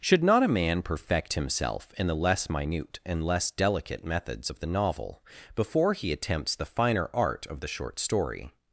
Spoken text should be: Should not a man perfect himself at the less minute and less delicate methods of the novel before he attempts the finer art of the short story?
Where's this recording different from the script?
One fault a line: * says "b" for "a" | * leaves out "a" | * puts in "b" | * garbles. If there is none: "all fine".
* says "in" for "at"